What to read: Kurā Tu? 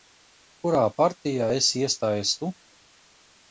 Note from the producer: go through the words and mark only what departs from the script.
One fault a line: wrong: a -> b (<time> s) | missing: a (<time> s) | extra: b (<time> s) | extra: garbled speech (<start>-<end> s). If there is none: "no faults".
extra: partijā esi iestājies (1.0 s)